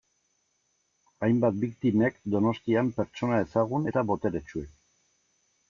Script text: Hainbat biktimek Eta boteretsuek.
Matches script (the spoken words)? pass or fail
fail